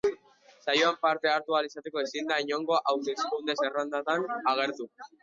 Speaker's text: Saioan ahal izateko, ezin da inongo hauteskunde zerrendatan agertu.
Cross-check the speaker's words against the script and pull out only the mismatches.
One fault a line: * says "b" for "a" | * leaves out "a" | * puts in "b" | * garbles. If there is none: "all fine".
* puts in "parte hartu"